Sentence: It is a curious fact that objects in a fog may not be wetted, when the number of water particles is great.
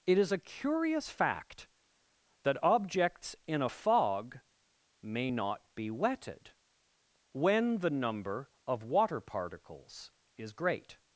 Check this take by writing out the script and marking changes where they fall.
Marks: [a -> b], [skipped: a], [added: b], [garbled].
It is a curious fact that objects in a fog may not be wetted, when the number of water particles is great.